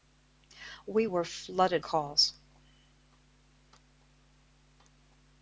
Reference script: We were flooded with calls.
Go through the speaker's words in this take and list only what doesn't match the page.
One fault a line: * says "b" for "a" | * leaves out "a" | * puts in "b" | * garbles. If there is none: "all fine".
* leaves out "with"